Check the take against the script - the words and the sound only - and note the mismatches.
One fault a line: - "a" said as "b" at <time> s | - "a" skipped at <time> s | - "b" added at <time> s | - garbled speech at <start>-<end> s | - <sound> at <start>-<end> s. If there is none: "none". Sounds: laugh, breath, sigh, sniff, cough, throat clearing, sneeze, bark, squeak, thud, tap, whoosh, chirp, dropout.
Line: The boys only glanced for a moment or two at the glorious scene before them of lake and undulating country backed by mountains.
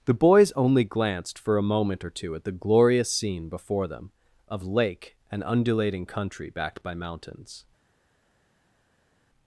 none